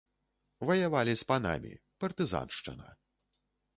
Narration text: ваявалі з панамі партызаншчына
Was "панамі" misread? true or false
false